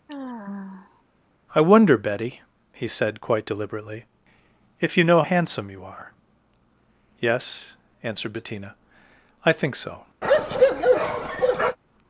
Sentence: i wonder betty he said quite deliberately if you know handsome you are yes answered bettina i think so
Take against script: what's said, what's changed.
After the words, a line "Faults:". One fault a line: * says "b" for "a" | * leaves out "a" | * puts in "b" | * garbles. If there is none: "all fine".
i wonder betty he said quite deliberately if you know handsome you are yes answered bettina i think so
Faults:
all fine